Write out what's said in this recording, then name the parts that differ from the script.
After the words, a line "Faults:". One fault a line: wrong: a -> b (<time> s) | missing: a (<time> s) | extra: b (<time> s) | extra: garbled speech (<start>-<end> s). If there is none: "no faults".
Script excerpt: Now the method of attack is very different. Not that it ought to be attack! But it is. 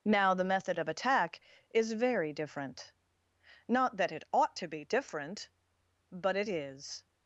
Now the method of attack is very different. Not that it ought to be different! But it is.
Faults:
wrong: attack -> different (4.8 s)